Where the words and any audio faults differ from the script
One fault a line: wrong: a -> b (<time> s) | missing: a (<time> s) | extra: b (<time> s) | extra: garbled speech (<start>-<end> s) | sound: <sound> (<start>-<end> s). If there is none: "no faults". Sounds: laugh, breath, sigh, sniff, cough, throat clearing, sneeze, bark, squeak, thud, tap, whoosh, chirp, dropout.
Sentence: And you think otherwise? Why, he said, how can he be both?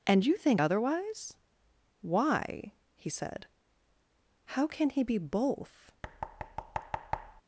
sound: thud (6.0-7.4 s)